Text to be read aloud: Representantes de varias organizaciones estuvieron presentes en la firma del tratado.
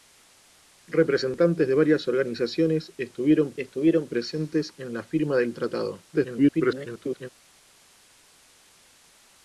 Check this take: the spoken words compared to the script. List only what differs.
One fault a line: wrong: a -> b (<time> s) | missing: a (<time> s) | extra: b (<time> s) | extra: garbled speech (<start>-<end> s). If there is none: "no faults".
extra: estuvieron (3.6 s)
extra: garbled speech (6.1-7.3 s)